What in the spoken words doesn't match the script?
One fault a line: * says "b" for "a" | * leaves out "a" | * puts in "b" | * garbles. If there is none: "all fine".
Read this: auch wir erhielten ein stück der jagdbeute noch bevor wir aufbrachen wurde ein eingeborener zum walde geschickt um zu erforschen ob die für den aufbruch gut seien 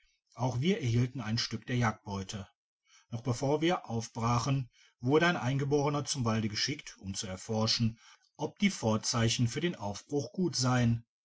* puts in "vorzeichen"